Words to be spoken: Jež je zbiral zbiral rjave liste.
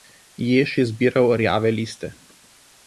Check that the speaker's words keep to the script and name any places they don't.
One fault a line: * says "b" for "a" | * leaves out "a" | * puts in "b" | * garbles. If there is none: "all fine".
* leaves out "zbiral"